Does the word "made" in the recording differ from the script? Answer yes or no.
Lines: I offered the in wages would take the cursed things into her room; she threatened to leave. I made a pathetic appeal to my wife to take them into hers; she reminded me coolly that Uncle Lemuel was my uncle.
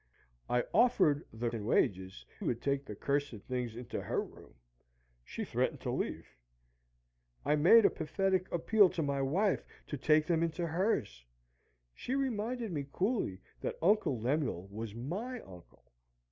no